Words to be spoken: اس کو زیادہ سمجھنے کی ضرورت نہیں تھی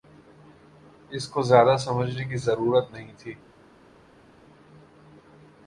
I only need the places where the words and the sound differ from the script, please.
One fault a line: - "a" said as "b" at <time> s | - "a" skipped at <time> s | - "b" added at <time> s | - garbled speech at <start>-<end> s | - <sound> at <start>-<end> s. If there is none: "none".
none